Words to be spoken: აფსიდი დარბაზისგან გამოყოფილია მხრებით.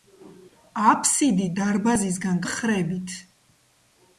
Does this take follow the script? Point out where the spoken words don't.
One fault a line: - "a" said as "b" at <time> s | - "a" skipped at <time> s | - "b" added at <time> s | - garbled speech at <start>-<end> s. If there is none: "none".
- "გამოყოფილია" skipped at 2.4 s